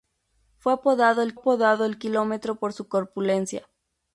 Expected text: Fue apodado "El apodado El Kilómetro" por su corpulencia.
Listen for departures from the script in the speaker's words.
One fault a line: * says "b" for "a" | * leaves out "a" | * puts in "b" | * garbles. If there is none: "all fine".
all fine